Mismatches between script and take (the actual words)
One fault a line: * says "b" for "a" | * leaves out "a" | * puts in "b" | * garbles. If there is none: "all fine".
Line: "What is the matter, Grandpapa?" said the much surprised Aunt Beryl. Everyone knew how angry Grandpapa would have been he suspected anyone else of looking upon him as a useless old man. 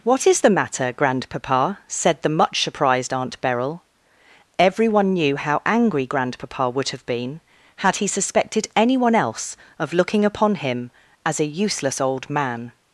* puts in "had"